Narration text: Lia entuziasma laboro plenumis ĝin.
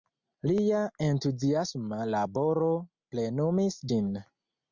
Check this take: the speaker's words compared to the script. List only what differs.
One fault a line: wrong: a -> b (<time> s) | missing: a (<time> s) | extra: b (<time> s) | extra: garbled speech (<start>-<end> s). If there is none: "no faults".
no faults